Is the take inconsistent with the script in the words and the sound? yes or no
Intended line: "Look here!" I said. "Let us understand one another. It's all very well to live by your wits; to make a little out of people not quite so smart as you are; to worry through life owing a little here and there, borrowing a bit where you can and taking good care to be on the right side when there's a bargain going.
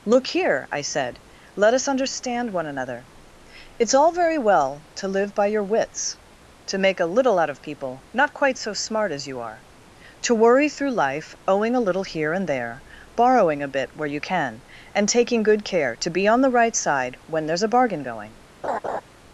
yes